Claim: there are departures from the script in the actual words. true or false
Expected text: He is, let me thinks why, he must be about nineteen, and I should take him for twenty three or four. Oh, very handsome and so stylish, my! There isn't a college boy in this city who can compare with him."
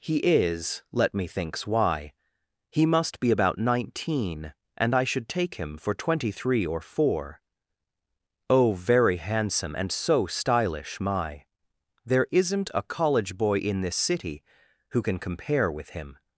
false